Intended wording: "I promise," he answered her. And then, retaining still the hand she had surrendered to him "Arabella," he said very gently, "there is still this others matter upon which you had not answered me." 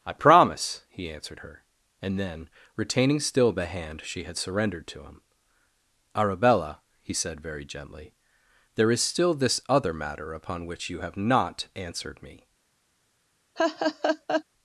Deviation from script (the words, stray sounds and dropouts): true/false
true